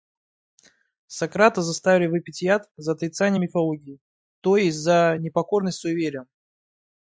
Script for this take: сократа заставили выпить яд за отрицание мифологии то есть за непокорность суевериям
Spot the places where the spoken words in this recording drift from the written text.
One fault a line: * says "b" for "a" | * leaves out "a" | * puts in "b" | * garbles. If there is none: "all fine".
all fine